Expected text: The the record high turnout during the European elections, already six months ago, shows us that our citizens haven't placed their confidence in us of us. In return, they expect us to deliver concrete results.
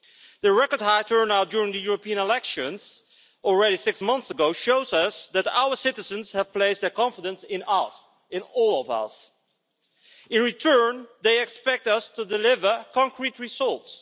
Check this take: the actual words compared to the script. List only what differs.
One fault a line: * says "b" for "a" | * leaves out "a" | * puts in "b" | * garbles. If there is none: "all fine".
* leaves out "the"
* says "have" for "haven't"
* puts in "in all"